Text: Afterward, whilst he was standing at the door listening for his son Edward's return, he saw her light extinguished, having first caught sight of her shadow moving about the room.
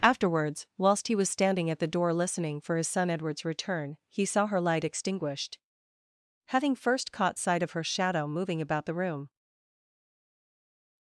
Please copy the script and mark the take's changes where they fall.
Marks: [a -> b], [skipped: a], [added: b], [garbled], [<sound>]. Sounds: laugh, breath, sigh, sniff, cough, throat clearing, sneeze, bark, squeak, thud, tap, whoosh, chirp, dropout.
[Afterward, -> Afterwards] whilst he was standing at the door listening for his son Edward's return, he saw her light extinguished, having first caught sight of her shadow moving about the room.